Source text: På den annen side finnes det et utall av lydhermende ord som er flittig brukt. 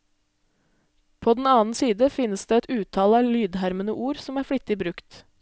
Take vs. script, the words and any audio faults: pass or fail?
pass